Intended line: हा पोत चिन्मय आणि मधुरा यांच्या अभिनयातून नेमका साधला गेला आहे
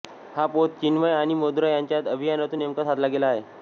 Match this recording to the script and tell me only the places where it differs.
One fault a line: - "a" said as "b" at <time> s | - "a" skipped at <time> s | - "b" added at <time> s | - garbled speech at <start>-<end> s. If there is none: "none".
none